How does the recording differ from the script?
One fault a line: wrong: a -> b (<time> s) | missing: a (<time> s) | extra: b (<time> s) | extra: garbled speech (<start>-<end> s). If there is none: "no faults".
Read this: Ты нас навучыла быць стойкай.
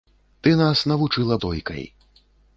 missing: быць (1.4 s)